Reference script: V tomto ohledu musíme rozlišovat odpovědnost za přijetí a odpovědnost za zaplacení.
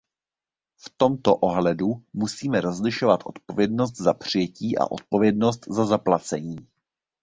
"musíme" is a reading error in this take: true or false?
false